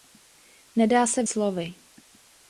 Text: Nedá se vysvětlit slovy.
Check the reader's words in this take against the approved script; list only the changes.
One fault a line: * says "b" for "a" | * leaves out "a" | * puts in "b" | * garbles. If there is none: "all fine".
* leaves out "vysvětlit"